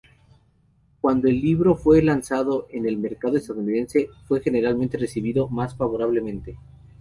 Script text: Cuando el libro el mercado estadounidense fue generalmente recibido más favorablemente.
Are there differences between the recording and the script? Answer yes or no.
yes